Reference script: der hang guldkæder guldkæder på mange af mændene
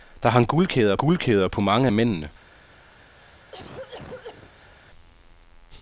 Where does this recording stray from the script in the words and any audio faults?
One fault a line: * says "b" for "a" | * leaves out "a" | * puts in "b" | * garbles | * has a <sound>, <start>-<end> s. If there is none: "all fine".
* has a cough, 3.2-4.7 s